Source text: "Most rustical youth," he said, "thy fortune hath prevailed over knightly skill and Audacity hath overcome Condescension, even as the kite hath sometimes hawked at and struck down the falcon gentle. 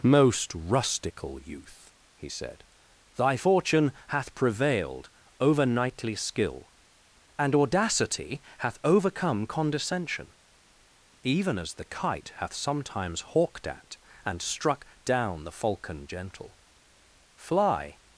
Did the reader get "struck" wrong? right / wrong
right